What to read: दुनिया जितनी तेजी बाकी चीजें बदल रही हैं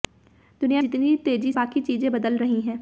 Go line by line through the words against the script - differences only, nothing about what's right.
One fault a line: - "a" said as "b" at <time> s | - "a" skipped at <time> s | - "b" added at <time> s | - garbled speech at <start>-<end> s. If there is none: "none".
none